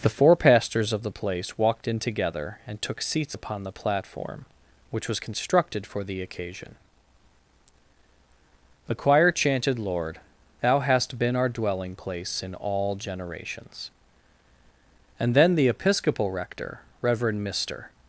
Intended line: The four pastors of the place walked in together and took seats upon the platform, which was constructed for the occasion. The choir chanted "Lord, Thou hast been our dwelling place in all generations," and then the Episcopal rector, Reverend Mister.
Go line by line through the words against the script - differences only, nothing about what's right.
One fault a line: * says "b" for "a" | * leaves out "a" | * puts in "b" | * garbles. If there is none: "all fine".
all fine